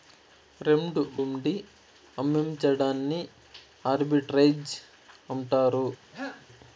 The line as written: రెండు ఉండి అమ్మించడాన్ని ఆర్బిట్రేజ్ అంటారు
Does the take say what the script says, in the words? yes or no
yes